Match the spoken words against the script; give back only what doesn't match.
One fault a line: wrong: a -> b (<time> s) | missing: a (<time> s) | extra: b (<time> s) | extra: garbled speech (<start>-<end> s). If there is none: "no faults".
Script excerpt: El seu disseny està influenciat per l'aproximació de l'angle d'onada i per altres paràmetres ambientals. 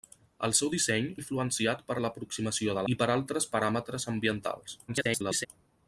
missing: està (1.1 s)
missing: l'angle d'onada (2.9 s)
extra: garbled speech (4.9-5.5 s)